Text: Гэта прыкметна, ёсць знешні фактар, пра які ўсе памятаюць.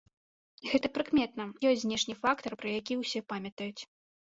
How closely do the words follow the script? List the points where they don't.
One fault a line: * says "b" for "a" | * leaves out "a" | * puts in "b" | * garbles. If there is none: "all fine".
all fine